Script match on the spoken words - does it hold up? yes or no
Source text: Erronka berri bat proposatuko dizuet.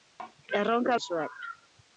no